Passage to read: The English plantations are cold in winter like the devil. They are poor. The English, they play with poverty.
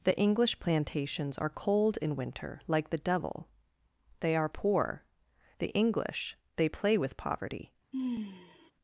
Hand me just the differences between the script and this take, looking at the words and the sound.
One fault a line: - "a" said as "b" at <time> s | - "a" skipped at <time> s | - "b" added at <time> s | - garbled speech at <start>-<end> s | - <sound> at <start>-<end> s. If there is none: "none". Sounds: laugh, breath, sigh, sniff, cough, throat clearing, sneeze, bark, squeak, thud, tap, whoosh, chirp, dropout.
- sigh at 7.9-8.7 s